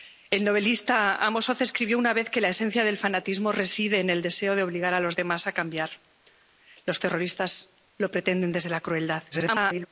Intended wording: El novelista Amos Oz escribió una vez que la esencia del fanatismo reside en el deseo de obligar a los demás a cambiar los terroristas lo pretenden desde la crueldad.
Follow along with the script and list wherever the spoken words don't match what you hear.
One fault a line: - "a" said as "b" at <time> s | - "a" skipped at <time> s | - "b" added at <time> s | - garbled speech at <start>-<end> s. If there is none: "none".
- garbled speech at 9.3-9.9 s